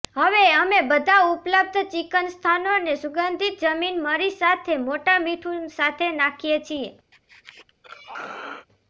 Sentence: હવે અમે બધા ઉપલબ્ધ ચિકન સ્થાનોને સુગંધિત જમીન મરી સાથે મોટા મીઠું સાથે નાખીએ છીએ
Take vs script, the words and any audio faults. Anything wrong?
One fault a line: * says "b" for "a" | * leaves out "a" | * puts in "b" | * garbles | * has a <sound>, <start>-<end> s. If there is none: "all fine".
* has a throat clearing, 7.1-8.7 s